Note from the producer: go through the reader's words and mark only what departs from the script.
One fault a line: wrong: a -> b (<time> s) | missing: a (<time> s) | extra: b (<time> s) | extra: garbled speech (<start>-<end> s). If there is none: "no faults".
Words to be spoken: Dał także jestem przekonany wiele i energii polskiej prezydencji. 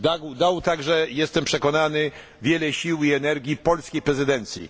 extra: sił (2.7 s)